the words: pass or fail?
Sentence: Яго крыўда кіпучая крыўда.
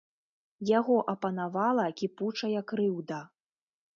fail